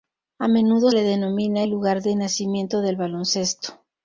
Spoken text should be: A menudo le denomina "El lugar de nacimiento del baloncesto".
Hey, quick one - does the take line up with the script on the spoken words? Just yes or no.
yes